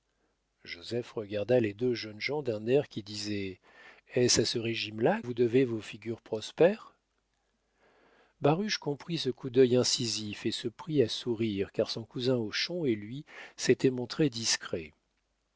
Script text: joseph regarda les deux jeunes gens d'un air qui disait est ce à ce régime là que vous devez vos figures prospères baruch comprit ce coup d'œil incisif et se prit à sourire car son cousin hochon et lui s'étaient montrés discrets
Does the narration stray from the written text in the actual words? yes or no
yes